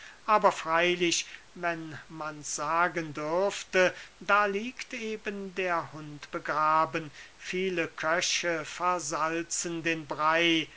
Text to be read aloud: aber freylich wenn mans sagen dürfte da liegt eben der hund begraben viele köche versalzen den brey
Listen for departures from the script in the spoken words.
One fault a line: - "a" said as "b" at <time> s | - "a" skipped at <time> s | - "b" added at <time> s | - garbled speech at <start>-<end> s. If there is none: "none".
none